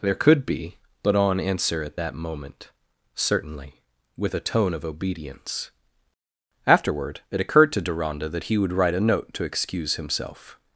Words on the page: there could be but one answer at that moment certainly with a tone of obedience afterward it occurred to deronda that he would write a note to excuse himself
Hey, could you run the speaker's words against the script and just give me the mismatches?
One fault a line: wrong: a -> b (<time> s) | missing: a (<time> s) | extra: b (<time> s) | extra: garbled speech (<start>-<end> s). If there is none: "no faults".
wrong: one -> on (1.1 s)